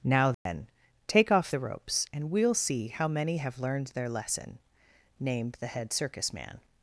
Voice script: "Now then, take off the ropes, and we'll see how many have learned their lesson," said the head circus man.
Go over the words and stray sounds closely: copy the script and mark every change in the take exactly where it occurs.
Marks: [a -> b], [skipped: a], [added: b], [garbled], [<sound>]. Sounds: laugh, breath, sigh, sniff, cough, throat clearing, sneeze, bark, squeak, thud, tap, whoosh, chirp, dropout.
"Now then, [dropout] take off the ropes, and we'll see how many have learned their lesson," [said -> named] the head circus man.